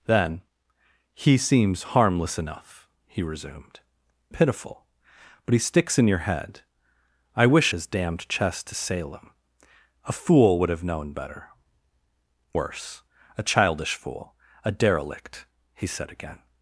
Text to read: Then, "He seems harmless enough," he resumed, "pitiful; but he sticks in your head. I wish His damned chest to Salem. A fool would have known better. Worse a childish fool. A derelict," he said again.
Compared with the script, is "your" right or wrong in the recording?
right